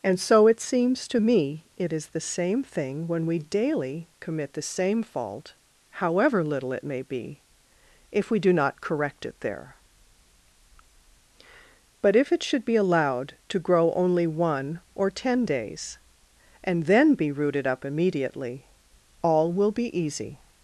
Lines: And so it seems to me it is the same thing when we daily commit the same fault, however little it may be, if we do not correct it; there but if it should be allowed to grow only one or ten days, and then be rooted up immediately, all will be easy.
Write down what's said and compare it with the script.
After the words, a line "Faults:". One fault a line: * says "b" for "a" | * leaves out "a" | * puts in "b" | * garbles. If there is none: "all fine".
And so it seems to me it is the same thing when we daily commit the same fault, however little it may be, if we do not correct it; there but if it should be allowed to grow only one or ten days, and then be rooted up immediately, all will be easy.
Faults:
all fine